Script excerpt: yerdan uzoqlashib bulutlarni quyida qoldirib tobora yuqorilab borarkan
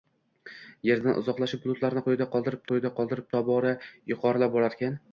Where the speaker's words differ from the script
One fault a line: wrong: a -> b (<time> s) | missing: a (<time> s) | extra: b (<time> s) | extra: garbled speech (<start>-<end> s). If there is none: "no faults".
extra: quyida qoldirib (2.7 s)